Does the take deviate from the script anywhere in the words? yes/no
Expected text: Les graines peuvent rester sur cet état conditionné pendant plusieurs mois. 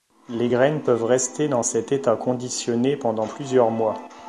yes